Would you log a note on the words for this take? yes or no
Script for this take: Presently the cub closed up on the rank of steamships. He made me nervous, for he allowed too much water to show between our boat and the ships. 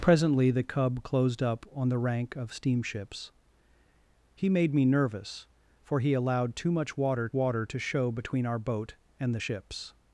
yes